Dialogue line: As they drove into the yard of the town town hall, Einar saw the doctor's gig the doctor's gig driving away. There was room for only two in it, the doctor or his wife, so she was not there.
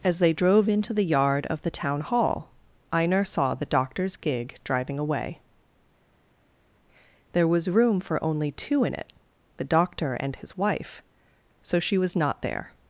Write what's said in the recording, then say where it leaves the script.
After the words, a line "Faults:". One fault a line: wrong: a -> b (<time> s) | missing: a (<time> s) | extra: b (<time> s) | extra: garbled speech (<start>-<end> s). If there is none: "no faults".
As they drove into the yard of the town hall, Einar saw the doctor's gig driving away. There was room for only two in it, the doctor and his wife, so she was not there.
Faults:
missing: town (2.0 s)
missing: the doctor's gig (4.6 s)
wrong: or -> and (10.1 s)